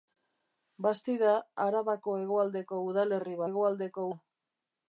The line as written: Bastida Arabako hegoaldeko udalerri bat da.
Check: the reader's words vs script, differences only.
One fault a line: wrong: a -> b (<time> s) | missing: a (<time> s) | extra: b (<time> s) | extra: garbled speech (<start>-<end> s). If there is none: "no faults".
wrong: bat -> hegoaldeko (3.5 s)